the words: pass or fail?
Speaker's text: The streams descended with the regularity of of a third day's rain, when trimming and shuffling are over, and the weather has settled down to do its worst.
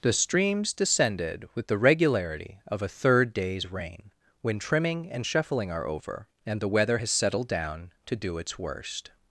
fail